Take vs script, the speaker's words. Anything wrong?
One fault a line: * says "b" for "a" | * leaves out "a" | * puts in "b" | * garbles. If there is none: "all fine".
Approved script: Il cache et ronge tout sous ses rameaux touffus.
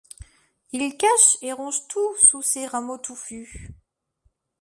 all fine